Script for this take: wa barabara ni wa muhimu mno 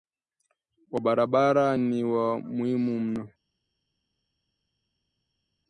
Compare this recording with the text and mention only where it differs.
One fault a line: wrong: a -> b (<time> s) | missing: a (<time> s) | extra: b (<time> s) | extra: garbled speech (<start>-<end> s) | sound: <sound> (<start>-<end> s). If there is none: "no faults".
no faults